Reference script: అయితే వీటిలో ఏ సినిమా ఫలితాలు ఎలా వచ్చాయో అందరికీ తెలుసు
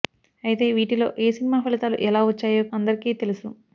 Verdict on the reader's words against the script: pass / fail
pass